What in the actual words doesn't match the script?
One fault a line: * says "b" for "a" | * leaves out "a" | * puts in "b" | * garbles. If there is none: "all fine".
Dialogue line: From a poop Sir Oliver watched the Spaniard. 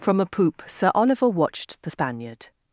all fine